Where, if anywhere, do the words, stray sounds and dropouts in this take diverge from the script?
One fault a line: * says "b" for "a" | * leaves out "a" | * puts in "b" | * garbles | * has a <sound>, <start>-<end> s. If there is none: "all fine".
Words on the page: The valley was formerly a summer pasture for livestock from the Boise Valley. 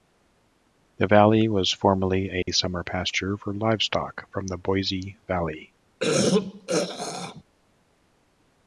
* has a dropout, 2.4-2.5 s
* has a throat clearing, 6.0-7.4 s